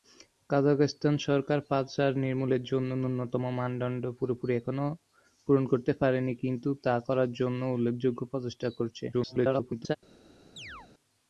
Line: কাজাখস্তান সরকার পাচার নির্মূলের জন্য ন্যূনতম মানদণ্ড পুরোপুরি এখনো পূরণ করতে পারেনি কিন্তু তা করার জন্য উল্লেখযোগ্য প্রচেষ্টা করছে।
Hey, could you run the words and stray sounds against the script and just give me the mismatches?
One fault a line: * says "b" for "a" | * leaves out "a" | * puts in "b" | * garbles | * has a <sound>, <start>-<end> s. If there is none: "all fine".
* garbles
* has a chirp, 10.6-10.9 s